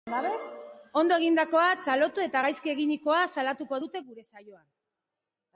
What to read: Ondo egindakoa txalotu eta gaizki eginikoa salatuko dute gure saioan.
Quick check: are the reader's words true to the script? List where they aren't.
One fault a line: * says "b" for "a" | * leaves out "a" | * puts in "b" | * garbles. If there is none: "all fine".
all fine